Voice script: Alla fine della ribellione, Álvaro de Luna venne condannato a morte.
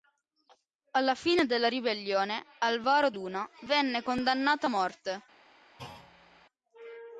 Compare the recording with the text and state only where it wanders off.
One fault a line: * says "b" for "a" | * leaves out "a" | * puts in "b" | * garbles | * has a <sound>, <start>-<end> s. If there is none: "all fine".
* leaves out "de"
* has a thud, 5.8-6.5 s